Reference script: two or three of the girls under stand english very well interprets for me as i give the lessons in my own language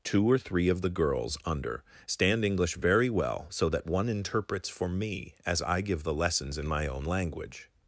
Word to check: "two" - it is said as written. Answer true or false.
true